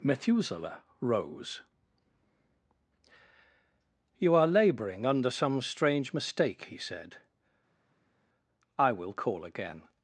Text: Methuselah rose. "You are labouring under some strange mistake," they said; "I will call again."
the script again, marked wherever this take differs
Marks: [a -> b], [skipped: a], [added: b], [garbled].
Methuselah rose. "You are labouring under some strange mistake," [they -> he] said; "I will call again."